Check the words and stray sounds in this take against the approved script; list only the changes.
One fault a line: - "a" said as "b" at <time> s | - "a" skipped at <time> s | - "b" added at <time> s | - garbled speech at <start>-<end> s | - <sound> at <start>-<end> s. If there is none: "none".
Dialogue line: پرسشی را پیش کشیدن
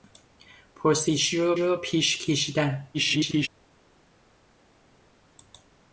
- "را" added at 1.6 s
- garbled speech at 2.9-3.5 s